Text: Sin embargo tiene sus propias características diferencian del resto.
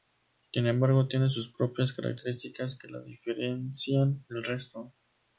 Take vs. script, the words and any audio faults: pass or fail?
fail